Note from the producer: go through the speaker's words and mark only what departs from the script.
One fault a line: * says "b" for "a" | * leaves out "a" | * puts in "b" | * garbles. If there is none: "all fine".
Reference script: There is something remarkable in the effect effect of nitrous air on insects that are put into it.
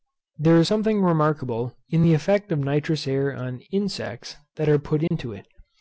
* leaves out "effect"